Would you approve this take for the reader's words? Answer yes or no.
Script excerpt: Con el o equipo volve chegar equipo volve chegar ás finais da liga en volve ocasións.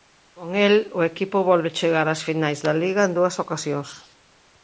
no